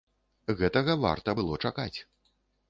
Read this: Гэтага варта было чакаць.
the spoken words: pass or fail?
pass